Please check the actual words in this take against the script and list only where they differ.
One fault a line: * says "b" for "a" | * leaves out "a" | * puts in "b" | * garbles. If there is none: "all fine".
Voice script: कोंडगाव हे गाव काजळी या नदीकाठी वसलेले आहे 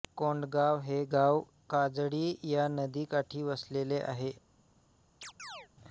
all fine